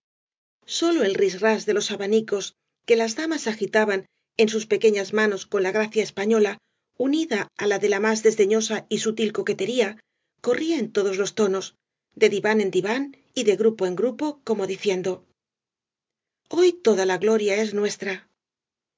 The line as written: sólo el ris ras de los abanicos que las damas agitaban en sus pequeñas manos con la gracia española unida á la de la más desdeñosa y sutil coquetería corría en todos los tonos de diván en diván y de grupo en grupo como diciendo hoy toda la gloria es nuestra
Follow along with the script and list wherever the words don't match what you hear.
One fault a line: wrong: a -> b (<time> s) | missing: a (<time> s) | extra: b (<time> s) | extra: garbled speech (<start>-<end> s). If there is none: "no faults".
no faults